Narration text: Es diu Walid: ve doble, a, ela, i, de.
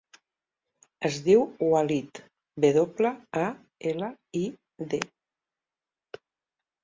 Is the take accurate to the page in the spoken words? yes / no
yes